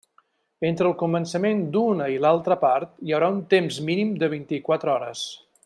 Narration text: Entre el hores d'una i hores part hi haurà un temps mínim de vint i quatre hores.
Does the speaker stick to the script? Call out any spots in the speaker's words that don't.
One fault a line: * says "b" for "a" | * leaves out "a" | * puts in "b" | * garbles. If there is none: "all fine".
* says "començament" for "hores"
* says "l'altra" for "hores"